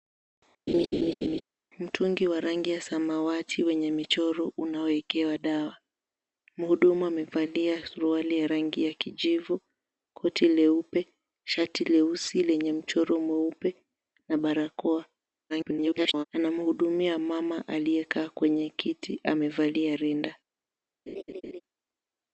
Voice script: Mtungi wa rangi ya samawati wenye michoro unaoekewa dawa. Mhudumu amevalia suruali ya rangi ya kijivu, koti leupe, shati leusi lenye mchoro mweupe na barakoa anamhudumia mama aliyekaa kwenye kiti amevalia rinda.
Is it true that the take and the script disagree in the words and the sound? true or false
true